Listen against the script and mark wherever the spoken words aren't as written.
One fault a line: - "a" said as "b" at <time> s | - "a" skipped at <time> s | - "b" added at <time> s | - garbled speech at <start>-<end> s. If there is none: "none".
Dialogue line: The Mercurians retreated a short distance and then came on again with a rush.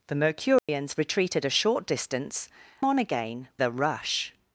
- "and then came" skipped at 2.5 s
- "with" skipped at 3.5 s